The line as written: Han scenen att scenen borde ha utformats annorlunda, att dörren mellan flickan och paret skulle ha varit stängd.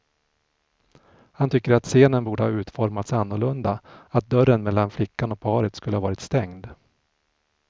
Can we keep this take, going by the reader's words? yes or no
no